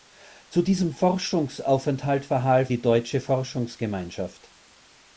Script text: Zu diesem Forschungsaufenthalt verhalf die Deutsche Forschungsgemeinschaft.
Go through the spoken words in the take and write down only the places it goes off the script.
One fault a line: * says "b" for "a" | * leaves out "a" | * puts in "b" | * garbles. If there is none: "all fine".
all fine